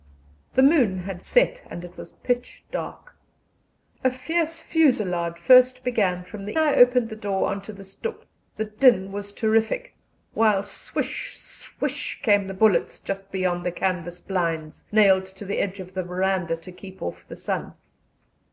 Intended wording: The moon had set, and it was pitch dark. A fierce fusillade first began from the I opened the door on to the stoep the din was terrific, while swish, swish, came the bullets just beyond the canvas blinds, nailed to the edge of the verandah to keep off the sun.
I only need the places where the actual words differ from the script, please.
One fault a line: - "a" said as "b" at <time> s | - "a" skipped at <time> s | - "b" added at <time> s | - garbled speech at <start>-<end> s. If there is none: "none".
none